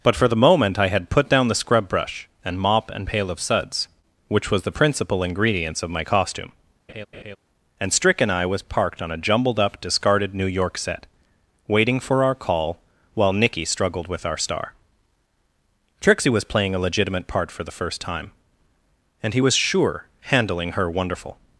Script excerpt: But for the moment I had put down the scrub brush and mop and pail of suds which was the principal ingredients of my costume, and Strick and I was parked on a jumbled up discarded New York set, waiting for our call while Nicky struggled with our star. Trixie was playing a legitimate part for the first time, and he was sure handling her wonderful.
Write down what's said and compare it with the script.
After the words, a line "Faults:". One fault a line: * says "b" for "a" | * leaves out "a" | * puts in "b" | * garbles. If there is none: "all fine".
But for the moment I had put down the scrub brush and mop and pail of suds which was the principal ingredients of my costume, and Strick and I was parked on a jumbled up discarded New York set, waiting for our call while Nicky struggled with our star. Trixie was playing a legitimate part for the first time, and he was sure handling her wonderful.
Faults:
all fine